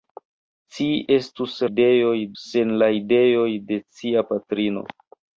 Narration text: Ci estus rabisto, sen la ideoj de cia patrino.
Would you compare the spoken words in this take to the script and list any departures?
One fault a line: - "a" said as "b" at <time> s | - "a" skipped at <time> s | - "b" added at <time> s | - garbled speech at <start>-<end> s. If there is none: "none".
- "rabisto" said as "ideoj" at 1.7 s